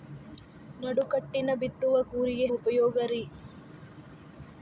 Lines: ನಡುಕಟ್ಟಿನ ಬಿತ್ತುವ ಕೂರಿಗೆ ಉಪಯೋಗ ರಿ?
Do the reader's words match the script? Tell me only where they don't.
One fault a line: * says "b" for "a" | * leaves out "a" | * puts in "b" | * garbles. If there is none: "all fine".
all fine